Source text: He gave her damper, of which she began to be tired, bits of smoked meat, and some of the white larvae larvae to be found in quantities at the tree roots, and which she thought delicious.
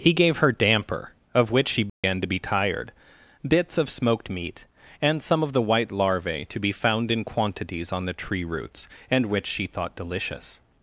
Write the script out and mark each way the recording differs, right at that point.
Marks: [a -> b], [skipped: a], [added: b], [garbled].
He gave her damper, of which she began to be tired, bits of smoked meat, and some of the white larvae [skipped: larvae] to be found in quantities [at -> on] the tree roots, and which she thought delicious.